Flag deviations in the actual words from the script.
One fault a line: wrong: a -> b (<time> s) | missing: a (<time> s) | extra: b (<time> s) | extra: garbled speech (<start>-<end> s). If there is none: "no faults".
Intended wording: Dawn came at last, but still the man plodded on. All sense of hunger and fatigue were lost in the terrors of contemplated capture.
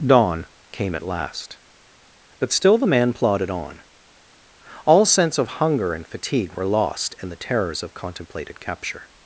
no faults